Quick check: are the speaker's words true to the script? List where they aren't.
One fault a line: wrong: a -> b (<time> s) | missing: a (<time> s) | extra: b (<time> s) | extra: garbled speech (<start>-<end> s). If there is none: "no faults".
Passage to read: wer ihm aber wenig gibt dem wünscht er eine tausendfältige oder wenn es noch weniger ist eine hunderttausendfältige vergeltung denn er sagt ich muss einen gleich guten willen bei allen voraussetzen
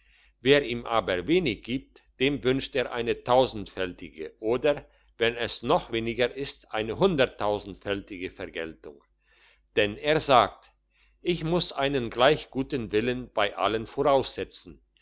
no faults